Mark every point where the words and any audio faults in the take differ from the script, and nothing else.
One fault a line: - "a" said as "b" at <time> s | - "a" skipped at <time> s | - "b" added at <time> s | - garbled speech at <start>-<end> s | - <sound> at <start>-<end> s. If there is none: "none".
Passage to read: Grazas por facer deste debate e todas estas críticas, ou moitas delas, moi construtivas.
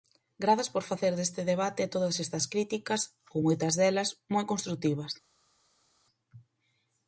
none